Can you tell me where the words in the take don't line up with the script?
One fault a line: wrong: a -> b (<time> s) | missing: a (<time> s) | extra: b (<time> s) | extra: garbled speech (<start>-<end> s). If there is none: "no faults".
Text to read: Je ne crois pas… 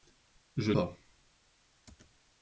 missing: ne crois (0.7 s)